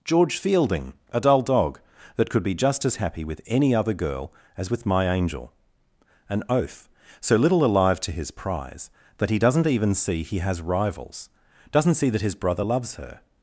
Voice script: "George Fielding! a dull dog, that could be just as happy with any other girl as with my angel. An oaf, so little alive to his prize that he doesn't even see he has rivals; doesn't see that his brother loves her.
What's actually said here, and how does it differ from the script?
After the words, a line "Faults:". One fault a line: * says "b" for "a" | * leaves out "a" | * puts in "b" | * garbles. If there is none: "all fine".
"George Fielding! a dull dog, that could be just as happy with any other girl as with my angel. An oaf, so little alive to his prize that he doesn't even see he has rivals; doesn't see that his brother loves her.
Faults:
all fine